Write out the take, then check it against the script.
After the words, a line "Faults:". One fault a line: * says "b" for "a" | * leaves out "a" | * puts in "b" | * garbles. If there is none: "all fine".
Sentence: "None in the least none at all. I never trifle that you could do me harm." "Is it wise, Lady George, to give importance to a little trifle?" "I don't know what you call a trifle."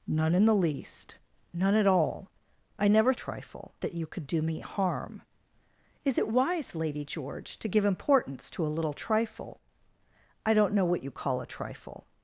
"None in the least none at all. I never trifle that you could do me harm." "Is it wise, Lady George, to give importance to a little trifle?" "I don't know what you call a trifle."
Faults:
all fine